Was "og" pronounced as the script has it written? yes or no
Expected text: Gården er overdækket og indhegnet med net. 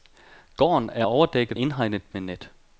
no